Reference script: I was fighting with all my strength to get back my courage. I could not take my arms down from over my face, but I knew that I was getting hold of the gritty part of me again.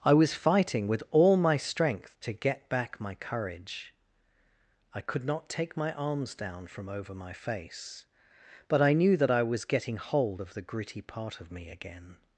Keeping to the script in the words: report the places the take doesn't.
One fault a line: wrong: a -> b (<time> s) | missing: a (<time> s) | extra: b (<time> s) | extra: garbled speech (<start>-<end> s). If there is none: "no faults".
no faults